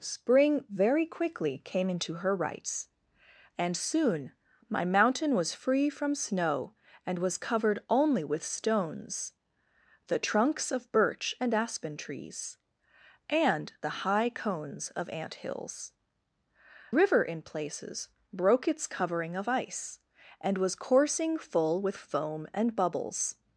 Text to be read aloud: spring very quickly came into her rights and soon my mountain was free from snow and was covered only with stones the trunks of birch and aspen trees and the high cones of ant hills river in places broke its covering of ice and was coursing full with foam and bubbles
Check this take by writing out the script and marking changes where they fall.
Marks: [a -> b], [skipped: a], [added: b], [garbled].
spring very quickly came into her rights and soon my mountain was free from snow and was covered only with stones the trunks of birch and aspen trees and the high cones of ant hills river in places broke its covering of ice and was coursing full with foam and bubbles